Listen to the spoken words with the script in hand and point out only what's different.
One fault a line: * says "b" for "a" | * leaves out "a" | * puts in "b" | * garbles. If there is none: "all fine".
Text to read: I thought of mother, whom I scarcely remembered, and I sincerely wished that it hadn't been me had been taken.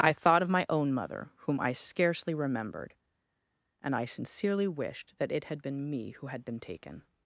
* puts in "my own"
* says "had" for "hadn't"
* puts in "who"